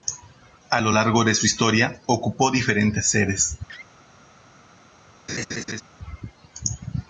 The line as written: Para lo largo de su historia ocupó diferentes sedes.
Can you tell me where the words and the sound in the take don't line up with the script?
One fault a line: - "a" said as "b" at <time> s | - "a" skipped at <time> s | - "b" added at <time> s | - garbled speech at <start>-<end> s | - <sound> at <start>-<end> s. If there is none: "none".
- "Para" said as "A" at 0.7 s
- laugh at 3.7-3.9 s
- laugh at 5.3-5.8 s